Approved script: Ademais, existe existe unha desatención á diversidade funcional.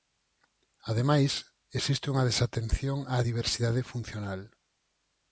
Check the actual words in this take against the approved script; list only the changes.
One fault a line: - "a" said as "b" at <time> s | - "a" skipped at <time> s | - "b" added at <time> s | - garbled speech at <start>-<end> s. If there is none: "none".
- "existe" skipped at 2.0 s